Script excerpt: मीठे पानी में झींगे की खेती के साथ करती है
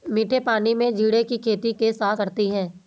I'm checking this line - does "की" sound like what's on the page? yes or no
yes